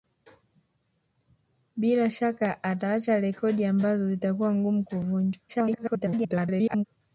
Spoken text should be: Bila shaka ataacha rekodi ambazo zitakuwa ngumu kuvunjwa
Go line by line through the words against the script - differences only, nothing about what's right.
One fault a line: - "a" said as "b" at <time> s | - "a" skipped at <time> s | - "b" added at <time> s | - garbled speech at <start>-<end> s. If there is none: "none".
- garbled speech at 5.5-6.8 s